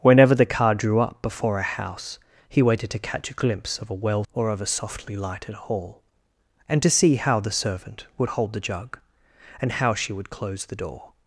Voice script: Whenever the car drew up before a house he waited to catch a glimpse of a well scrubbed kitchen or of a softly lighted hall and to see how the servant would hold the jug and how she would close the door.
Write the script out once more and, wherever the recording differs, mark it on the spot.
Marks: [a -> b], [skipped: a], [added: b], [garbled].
Whenever the car drew up before a house he waited to catch a glimpse of a well [skipped: scrubbed kitchen] or of a softly lighted hall and to see how the servant would hold the jug and how she would close the door.